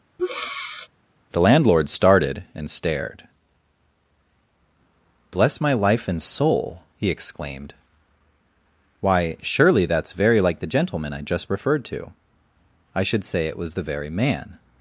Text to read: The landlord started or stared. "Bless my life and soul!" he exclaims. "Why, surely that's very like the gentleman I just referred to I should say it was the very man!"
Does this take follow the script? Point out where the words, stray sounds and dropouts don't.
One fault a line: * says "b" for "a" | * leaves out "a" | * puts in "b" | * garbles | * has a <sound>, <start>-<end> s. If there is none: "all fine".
* has a breath, 0.2-0.9 s
* says "and" for "or"
* says "exclaimed" for "exclaims"